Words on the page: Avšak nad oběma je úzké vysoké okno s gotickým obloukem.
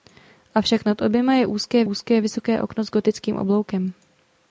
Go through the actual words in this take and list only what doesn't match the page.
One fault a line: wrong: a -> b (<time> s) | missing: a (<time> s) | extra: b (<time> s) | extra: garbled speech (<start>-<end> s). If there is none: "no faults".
extra: úzké (1.8 s)